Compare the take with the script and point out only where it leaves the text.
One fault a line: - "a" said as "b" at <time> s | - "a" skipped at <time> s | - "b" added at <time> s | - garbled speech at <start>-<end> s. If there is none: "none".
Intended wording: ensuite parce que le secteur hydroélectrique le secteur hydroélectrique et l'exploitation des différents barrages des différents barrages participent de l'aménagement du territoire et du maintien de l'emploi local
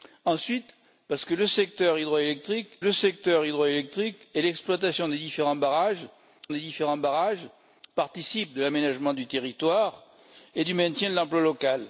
none